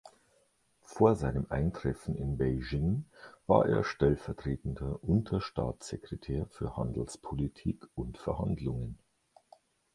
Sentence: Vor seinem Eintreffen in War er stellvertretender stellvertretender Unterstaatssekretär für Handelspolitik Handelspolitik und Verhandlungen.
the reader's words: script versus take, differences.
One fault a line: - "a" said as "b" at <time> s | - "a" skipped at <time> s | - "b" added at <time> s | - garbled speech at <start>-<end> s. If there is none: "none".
- "Beijing" added at 2.4 s
- "stellvertretender" skipped at 5.0 s
- "Handelspolitik" skipped at 7.9 s